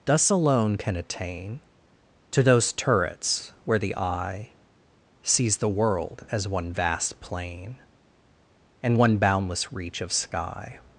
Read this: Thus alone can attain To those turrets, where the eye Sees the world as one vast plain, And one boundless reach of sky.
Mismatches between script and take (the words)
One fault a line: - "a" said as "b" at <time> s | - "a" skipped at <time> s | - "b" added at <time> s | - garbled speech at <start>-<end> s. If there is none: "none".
none